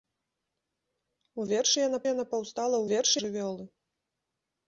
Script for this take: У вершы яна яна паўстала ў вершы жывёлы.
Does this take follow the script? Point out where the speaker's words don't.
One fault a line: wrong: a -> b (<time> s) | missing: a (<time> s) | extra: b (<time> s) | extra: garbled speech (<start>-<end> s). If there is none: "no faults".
no faults